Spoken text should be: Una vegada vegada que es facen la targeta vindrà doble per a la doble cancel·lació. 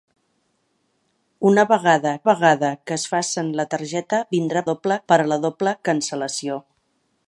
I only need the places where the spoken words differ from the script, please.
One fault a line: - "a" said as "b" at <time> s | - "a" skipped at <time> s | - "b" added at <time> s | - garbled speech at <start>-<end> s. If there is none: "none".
none